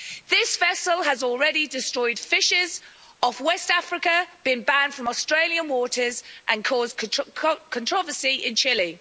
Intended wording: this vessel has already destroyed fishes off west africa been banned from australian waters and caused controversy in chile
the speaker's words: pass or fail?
pass